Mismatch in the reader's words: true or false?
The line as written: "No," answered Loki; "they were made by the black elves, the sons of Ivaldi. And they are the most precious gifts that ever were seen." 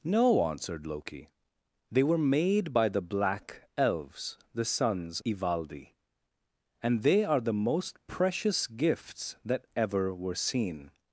true